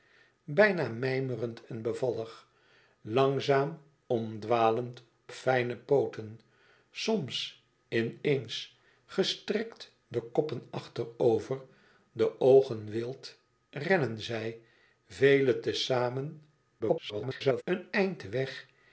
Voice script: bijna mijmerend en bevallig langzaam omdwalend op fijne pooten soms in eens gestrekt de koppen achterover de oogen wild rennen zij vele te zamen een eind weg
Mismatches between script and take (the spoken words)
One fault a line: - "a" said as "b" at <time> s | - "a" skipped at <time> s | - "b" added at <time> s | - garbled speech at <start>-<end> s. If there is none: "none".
- "op" skipped at 5.0 s
- garbled speech at 16.8-17.6 s